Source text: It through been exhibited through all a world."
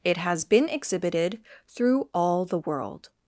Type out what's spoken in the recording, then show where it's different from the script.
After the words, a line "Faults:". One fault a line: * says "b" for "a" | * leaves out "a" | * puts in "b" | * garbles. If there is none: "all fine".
It has been exhibited through all the world."
Faults:
* says "has" for "through"
* says "the" for "a"